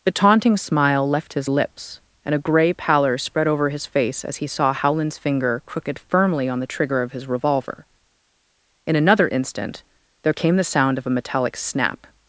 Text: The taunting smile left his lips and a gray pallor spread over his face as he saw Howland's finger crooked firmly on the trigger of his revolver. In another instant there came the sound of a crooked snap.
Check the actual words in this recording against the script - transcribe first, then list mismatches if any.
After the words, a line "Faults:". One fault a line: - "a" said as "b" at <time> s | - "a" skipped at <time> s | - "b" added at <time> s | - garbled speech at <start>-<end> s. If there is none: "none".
The taunting smile left his lips and a gray pallor spread over his face as he saw Howland's finger crooked firmly on the trigger of his revolver. In another instant there came the sound of a metallic snap.
Faults:
- "crooked" said as "metallic" at 11.2 s